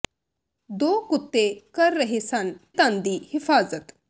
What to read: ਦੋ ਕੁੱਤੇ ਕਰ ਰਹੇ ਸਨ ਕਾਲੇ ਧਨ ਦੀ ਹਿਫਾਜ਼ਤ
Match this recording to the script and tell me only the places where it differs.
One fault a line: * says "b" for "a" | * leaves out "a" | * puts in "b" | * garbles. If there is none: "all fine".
* leaves out "ਕਾਲੇ"